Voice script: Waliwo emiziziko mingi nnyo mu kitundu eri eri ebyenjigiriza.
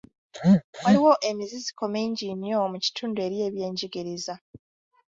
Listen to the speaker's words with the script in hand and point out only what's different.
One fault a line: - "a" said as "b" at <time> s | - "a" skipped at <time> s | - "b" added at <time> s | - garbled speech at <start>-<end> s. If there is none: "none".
- "eri" skipped at 3.4 s